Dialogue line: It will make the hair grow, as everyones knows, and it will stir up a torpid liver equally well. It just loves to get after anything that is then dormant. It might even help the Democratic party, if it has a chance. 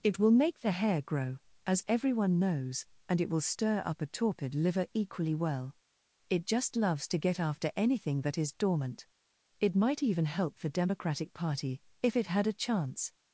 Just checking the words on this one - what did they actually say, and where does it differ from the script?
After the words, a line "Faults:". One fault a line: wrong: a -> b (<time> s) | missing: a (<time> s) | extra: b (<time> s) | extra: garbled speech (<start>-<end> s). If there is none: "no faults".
It will make the hair grow, as everyone knows, and it will stir up a torpid liver equally well. It just loves to get after anything that is dormant. It might even help the Democratic party, if it had a chance.
Faults:
wrong: everyones -> everyone (1.9 s)
missing: then (8.5 s)
wrong: has -> had (12.3 s)